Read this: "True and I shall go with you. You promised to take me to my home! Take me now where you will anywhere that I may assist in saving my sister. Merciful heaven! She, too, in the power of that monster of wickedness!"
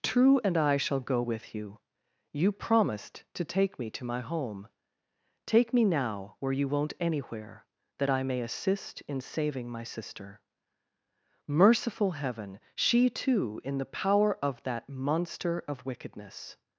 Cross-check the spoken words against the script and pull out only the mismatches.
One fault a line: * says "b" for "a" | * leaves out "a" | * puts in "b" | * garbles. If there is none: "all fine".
* says "won't" for "will"